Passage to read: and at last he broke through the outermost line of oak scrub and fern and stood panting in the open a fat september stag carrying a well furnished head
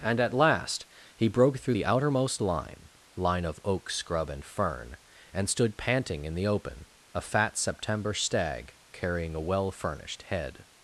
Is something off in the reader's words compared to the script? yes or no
yes